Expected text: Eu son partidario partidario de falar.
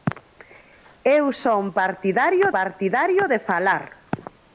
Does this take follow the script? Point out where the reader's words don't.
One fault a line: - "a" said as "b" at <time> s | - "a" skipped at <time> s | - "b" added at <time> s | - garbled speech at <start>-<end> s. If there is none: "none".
none